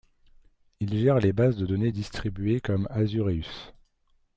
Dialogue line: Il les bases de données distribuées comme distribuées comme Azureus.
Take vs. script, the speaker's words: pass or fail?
fail